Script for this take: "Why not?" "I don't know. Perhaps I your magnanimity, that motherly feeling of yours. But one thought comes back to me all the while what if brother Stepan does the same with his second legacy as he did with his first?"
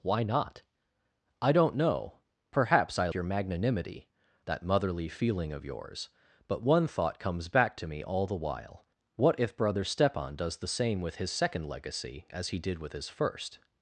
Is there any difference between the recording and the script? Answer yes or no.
no